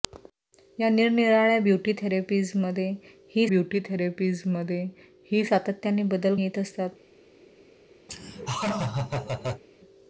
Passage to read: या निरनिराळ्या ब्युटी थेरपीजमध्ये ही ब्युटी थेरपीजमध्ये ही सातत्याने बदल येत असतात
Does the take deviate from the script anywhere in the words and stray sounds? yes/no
yes